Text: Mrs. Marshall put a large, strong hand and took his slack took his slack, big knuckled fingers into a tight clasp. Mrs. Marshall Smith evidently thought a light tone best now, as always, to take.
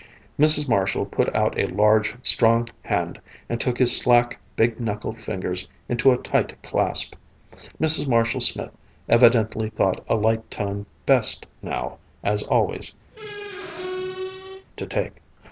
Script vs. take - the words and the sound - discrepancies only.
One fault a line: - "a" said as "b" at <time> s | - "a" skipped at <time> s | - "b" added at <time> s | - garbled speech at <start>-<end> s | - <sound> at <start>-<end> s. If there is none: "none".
- "out" added at 1.4 s
- "took his slack" skipped at 4.4 s
- squeak at 13.1-14.7 s